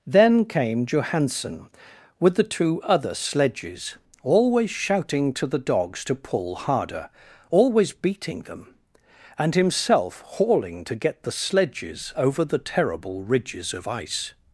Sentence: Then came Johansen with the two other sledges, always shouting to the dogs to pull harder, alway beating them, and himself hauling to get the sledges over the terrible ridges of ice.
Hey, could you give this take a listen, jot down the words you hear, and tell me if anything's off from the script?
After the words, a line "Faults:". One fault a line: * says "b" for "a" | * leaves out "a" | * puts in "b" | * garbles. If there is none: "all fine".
Then came Johansen with the two other sledges, always shouting to the dogs to pull harder, always beating them, and himself hauling to get the sledges over the terrible ridges of ice.
Faults:
* says "always" for "alway"